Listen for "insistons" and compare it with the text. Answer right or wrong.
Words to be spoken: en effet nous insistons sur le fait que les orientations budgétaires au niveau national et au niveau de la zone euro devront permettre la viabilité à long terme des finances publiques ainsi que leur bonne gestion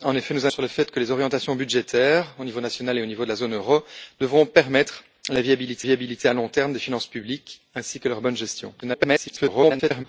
wrong